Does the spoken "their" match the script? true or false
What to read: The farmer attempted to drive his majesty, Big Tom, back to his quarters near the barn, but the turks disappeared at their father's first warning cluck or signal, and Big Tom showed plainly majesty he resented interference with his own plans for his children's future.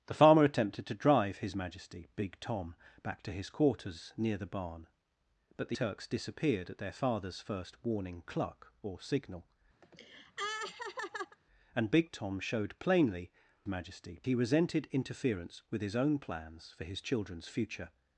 true